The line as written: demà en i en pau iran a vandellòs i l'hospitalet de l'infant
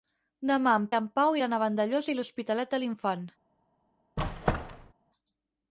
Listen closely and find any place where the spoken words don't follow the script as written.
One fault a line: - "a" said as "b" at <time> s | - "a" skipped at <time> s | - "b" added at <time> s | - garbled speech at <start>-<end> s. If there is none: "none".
none